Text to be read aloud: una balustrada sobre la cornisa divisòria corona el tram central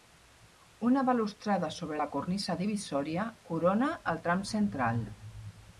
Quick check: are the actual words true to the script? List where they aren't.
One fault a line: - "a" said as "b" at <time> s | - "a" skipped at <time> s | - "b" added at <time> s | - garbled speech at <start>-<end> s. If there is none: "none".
none